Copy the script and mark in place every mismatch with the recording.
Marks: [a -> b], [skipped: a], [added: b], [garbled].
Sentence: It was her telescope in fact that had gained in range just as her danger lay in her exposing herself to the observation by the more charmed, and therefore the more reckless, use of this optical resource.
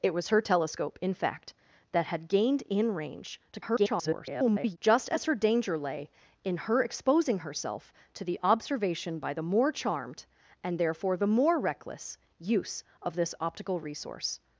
It was her telescope in fact that had gained in range [garbled] just as her danger lay in her exposing herself to the observation by the more charmed, and therefore the more reckless, use of this optical resource.